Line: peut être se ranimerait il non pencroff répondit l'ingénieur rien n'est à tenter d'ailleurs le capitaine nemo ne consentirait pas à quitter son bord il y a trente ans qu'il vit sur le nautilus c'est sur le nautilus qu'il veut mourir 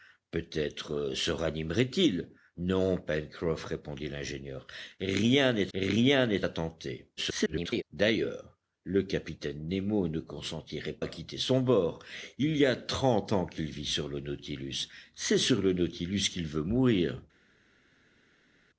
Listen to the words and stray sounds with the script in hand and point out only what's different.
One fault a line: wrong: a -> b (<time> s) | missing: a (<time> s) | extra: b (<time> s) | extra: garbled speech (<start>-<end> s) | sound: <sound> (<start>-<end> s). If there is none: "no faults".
extra: rien n'est (5.7 s)
extra: garbled speech (7.2-7.8 s)
missing: pas (10.9 s)